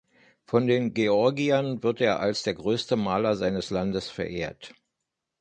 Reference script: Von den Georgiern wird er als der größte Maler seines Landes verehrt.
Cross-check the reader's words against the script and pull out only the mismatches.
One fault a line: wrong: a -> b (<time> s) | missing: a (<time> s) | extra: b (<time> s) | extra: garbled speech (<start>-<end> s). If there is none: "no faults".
no faults